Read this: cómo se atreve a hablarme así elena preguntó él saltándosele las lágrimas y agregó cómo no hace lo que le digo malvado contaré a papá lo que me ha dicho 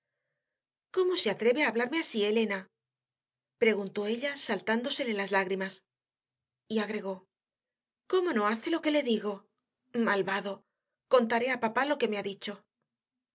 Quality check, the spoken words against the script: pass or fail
fail